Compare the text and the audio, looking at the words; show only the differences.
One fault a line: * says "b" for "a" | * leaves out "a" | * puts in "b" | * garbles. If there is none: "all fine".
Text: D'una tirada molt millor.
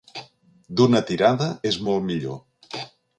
* puts in "és"